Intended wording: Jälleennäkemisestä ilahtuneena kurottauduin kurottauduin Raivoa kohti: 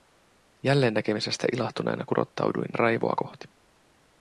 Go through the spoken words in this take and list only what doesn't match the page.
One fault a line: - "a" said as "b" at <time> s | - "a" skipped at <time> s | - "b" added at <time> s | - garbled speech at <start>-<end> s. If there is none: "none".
- "kurottauduin" skipped at 2.8 s